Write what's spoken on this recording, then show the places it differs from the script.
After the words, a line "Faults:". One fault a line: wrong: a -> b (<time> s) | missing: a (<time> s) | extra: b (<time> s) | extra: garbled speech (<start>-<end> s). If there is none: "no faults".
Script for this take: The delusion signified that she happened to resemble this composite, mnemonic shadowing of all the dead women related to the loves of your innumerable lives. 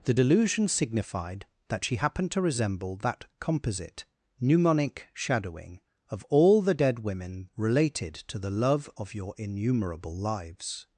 The delusion signified that she happened to resemble that composite, mnemonic shadowing of all the dead women related to the love of your innumerable lives.
Faults:
wrong: this -> that (3.0 s)
wrong: loves -> love (8.5 s)